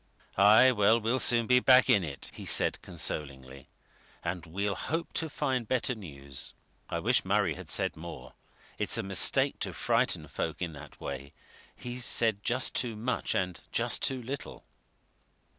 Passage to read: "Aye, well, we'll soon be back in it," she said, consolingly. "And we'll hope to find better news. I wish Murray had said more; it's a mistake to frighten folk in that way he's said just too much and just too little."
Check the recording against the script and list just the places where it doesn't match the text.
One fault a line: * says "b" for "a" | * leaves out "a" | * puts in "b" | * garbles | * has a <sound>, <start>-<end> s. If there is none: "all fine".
* says "he" for "she"